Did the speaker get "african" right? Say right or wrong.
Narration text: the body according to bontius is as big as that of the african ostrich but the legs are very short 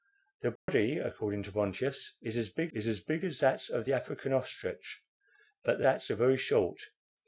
right